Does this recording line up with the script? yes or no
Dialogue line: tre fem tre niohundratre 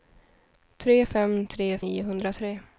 yes